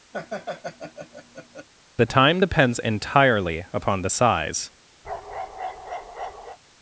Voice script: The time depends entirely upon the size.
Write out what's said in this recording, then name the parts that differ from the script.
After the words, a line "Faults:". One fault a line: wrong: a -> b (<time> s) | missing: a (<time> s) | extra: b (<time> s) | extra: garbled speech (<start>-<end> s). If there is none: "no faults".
The time depends entirely upon the size.
Faults:
no faults